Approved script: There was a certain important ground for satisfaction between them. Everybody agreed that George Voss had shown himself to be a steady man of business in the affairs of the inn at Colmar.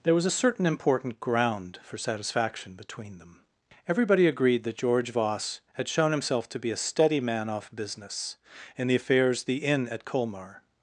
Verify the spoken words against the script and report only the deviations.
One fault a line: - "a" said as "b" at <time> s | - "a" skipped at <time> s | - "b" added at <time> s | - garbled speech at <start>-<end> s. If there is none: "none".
- "of" said as "off" at 7.5 s
- "of" skipped at 9.4 s